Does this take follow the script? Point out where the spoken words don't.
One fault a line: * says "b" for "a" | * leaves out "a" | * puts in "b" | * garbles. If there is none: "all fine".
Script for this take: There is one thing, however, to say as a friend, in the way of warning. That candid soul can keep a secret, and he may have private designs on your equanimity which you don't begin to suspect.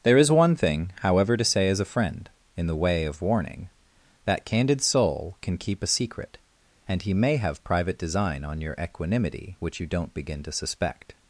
* says "design" for "designs"